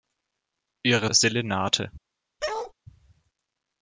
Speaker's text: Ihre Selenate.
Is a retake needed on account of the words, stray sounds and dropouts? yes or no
yes